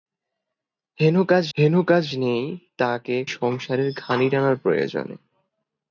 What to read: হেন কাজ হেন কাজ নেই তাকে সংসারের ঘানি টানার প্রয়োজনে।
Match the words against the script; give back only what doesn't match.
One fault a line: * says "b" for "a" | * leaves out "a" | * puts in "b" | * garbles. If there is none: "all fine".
all fine